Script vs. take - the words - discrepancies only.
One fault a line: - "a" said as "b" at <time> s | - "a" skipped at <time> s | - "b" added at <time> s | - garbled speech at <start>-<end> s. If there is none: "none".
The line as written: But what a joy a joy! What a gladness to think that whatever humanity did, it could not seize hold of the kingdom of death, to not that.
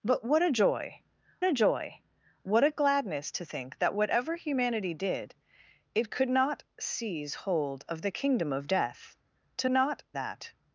none